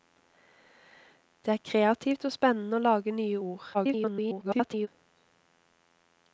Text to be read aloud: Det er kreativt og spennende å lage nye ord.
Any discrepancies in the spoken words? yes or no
yes